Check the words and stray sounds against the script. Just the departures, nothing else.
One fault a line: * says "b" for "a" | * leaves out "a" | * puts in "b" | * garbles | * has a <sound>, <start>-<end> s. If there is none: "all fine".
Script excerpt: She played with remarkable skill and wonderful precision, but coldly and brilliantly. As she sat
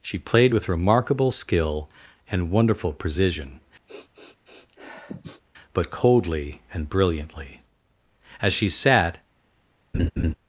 * has a sniff, 3.9-5.4 s
* has a laugh, 9.9-10.3 s